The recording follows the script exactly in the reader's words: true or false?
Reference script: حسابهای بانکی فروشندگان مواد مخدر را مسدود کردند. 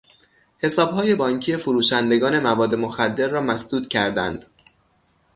true